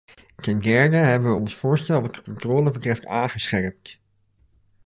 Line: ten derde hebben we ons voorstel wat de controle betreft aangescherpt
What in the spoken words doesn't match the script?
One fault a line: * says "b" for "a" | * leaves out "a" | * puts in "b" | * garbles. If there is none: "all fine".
all fine